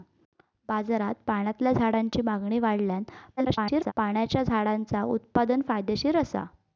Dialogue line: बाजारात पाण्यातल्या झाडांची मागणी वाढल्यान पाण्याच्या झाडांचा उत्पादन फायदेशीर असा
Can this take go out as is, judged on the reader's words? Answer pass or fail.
fail